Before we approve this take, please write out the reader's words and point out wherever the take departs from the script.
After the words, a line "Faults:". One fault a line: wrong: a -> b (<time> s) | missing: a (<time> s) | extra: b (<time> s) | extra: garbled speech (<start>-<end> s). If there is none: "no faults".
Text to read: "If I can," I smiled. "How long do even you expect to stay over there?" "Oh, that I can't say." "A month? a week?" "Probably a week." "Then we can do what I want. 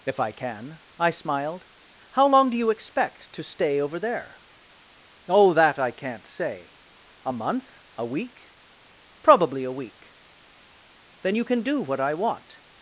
"If I can," I smiled. "How long do you expect to stay over there?" "Oh, that I can't say." "A month? a week?" "Probably a week." "Then you can do what I want.
Faults:
missing: even (2.6 s)
wrong: we -> you (11.3 s)